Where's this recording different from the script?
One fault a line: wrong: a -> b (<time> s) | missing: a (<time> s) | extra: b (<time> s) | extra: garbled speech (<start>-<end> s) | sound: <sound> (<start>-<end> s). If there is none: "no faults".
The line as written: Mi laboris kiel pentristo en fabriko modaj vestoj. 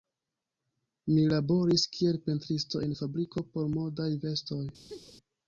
extra: por (3.5 s)
sound: laugh (4.9-5.1 s)